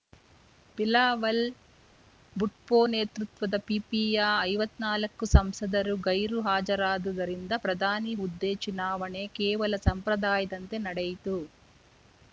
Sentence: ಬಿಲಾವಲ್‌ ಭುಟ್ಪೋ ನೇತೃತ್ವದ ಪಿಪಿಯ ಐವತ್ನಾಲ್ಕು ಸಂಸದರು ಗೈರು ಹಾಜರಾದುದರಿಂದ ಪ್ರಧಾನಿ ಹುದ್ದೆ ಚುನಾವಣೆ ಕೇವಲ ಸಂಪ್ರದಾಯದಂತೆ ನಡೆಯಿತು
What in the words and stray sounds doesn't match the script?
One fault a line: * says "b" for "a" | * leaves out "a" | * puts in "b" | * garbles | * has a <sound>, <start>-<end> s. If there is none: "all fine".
all fine